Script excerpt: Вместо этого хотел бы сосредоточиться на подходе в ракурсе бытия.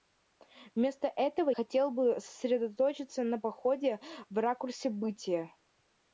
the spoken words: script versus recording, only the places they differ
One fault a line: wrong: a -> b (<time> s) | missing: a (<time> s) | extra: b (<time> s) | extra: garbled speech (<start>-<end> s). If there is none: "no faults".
no faults